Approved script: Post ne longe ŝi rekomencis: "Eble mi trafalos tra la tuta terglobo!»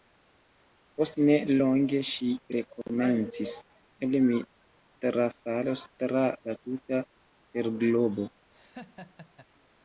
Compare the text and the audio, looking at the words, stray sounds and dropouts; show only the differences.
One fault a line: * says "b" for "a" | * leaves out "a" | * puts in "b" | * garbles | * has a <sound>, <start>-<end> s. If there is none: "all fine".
* has a laugh, 8.5-9.5 s